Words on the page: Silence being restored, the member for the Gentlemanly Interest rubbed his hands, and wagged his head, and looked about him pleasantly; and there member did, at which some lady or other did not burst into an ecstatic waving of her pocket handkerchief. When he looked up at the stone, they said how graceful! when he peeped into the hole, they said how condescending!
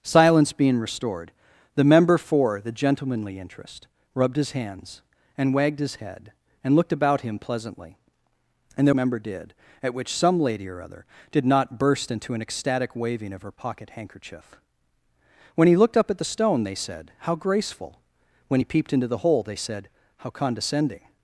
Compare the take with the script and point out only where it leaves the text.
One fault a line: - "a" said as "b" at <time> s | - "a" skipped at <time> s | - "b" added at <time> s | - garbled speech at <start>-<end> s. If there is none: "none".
none